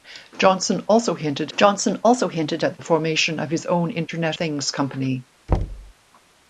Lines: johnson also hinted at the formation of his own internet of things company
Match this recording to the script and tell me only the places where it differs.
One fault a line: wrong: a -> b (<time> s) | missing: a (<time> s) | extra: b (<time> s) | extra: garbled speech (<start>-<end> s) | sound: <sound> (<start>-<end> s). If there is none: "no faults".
extra: johnson also hinted (1.6 s)
missing: of (4.4 s)
sound: thud (5.5-5.9 s)